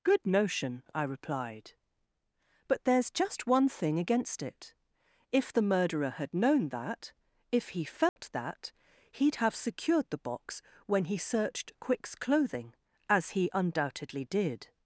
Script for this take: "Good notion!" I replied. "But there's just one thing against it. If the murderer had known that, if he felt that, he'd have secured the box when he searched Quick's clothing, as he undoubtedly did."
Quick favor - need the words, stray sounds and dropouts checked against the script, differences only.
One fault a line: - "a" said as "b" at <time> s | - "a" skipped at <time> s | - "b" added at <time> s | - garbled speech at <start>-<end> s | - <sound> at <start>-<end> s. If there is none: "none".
- dropout at 8.1-8.2 s